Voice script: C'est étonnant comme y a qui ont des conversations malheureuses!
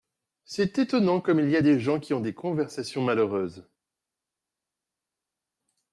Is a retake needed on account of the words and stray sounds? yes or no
yes